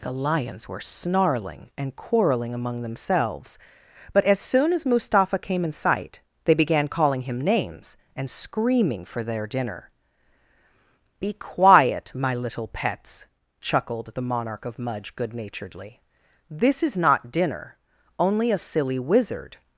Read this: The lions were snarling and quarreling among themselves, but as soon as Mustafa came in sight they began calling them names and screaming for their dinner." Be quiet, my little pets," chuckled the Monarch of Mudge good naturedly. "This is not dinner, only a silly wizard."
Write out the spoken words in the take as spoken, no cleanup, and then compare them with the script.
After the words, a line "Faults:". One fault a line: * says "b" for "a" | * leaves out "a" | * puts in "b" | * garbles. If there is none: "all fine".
The lions were snarling and quarreling among themselves, but as soon as Mustafa came in sight they began calling him names and screaming for their dinner." Be quiet, my little pets," chuckled the Monarch of Mudge good naturedly. "This is not dinner, only a silly wizard."
Faults:
* says "him" for "them"